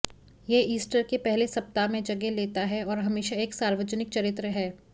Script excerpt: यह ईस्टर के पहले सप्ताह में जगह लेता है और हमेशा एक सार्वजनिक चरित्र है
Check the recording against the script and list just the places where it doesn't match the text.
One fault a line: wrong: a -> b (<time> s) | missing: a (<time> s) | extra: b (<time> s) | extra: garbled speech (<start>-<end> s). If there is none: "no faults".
no faults